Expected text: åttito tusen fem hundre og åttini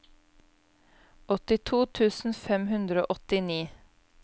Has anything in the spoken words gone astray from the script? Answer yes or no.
no